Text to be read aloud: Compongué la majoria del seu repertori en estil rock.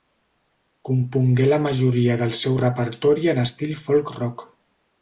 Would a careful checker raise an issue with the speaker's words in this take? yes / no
yes